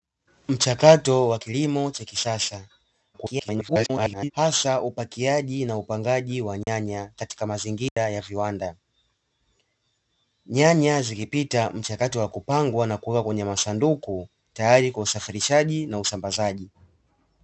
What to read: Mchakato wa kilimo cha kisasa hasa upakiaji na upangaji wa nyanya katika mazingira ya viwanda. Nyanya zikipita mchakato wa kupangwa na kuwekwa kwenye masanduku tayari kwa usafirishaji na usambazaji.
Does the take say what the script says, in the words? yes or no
no